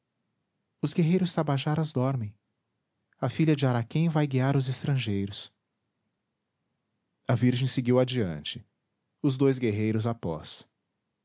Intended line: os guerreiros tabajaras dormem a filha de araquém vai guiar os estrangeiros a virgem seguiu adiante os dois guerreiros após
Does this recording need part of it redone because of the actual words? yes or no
no